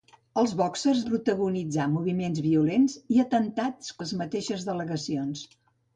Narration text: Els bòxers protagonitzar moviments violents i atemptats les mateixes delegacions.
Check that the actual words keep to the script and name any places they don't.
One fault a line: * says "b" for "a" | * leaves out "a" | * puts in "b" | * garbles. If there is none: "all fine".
all fine